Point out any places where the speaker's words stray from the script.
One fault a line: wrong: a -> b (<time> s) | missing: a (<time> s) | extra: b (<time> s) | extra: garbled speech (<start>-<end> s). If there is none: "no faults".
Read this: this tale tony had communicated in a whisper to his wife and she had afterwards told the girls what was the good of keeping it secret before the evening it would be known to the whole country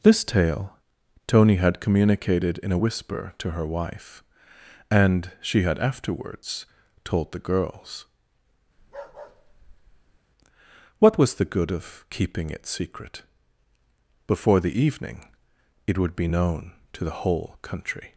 wrong: his -> her (3.5 s)